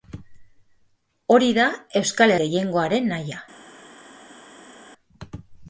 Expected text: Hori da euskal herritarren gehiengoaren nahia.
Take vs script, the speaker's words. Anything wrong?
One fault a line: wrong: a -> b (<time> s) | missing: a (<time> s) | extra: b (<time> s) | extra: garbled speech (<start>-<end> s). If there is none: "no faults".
missing: herritarren (2.3 s)